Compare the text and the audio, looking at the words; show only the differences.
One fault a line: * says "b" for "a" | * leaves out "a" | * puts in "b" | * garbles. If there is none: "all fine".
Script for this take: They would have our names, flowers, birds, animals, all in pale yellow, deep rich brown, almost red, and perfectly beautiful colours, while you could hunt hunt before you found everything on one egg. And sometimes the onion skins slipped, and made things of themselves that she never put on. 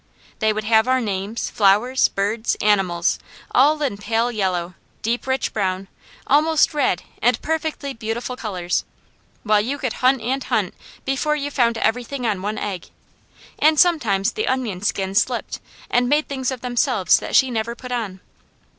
* puts in "and"